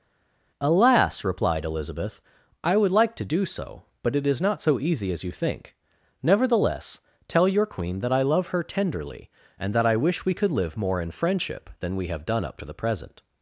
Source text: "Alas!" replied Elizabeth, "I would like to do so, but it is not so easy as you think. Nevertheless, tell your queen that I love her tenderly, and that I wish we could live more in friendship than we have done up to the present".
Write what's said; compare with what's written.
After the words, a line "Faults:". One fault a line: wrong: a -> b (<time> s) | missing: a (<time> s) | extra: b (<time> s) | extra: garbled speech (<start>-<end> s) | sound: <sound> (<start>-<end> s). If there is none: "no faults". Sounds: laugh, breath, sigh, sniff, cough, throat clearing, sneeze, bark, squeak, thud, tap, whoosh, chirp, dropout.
"Alas!" replied Elizabeth, "I would like to do so, but it is not so easy as you think. Nevertheless, tell your queen that I love her tenderly, and that I wish we could live more in friendship than we have done up to the present".
Faults:
no faults